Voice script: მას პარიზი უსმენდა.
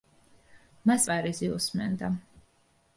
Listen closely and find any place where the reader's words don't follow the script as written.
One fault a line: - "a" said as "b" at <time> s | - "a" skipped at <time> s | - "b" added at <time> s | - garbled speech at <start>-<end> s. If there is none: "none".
none